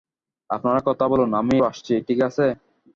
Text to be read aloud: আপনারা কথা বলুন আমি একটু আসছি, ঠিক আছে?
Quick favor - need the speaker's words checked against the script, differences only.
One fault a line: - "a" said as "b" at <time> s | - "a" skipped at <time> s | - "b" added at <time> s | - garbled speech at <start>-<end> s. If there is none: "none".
- "একটু" skipped at 1.5 s